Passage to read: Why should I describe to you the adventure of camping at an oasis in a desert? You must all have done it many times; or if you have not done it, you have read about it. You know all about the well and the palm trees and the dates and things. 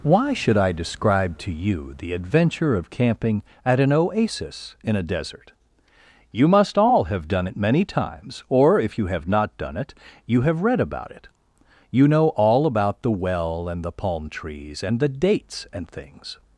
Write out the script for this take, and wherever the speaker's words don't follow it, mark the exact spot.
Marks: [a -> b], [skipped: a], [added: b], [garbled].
Why should I describe to you the adventure of camping at an oasis in a desert? You must all have done it many times; or if you have not done it, you have read about it. You know all about the well and the palm trees and the dates and things.